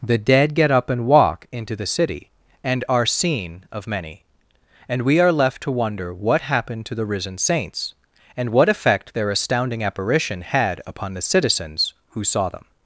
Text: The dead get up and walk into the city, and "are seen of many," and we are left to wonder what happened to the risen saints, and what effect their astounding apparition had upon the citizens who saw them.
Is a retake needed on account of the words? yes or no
no